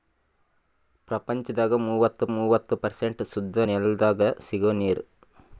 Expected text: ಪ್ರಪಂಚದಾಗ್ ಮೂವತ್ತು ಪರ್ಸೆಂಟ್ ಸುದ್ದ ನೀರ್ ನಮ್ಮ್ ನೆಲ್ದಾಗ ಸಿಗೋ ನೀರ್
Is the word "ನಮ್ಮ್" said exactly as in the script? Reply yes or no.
no